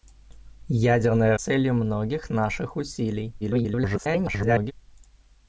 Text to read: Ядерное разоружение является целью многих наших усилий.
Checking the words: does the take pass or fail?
fail